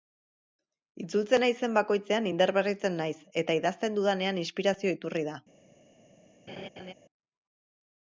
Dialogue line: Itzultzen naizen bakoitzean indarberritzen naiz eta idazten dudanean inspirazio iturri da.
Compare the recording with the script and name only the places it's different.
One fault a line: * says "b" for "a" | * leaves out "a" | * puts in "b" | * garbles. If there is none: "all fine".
all fine